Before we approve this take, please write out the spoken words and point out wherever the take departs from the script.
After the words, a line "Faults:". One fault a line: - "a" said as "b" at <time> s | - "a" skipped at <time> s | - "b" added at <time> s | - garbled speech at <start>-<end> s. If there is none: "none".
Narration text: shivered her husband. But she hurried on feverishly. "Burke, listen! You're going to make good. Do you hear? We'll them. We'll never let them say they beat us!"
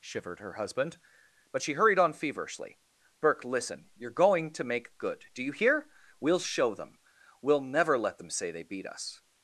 shivered her husband. But she hurried on feverishly. "Burke, listen! You're going to make good. Do you hear? We'll show them. We'll never let them say they beat us!"
Faults:
- "show" added at 6.4 s